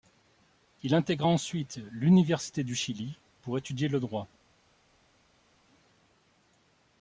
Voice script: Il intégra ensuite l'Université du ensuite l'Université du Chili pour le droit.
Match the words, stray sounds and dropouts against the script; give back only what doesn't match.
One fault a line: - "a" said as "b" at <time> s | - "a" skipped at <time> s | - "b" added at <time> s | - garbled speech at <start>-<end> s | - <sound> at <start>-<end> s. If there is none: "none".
- "ensuite l'Université du" skipped at 2.7 s
- "étudier" added at 3.6 s